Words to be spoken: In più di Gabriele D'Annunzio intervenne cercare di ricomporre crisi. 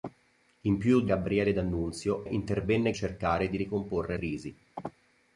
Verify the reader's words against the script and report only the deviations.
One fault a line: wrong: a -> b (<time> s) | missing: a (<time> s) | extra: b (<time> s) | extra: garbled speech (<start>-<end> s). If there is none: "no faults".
no faults